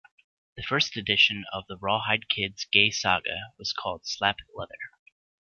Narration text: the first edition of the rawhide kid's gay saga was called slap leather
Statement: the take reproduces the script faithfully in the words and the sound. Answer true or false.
true